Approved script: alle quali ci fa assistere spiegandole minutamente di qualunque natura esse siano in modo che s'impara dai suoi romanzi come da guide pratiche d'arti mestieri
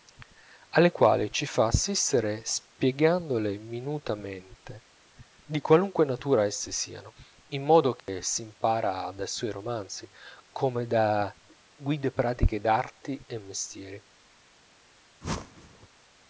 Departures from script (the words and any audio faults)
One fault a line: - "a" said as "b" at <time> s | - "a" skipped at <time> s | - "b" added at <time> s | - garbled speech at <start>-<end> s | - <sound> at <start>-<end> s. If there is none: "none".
- dropout at 8.0-8.1 s
- "e" added at 13.3 s
- whoosh at 15.2-15.9 s